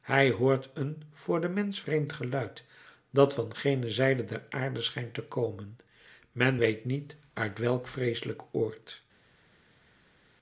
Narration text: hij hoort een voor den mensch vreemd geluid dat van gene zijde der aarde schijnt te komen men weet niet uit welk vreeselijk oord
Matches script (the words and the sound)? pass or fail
pass